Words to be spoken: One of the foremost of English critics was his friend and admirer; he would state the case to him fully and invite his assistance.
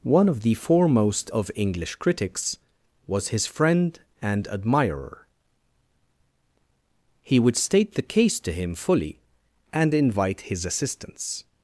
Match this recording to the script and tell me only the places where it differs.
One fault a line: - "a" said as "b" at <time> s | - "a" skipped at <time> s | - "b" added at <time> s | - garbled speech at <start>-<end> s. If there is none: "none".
none